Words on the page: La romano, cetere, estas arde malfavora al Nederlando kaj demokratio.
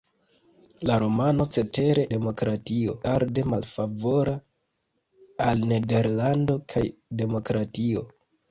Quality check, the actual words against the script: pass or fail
fail